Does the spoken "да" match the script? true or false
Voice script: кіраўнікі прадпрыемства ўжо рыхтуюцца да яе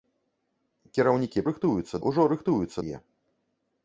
false